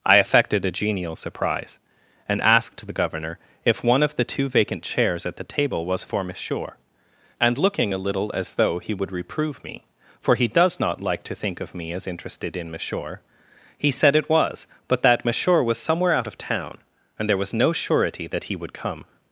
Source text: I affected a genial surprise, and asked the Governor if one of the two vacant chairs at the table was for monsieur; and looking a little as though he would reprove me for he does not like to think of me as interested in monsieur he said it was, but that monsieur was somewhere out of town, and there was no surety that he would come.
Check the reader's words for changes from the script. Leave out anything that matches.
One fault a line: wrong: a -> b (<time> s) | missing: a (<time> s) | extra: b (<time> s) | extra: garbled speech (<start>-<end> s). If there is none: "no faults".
no faults